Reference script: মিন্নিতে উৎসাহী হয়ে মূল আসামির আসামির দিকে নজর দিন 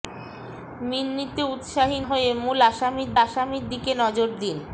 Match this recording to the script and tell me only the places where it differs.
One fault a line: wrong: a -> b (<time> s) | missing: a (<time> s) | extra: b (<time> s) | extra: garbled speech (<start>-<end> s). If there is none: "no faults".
no faults